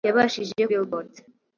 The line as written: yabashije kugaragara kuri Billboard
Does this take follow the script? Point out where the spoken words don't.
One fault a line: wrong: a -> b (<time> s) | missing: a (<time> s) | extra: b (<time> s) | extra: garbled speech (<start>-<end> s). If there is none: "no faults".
missing: kugaragara kuri (0.6 s)